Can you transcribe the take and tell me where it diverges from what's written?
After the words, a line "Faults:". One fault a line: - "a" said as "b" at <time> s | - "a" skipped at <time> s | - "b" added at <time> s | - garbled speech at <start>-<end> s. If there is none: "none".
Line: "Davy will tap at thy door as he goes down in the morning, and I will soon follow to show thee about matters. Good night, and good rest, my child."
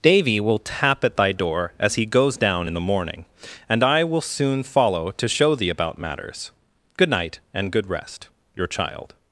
"Davy will tap at thy door as he goes down in the morning, and I will soon follow to show thee about matters. Good night, and good rest, your child."
Faults:
- "my" said as "your" at 8.5 s